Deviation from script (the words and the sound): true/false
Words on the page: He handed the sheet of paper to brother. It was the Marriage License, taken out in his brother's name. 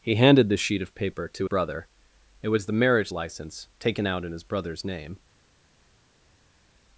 false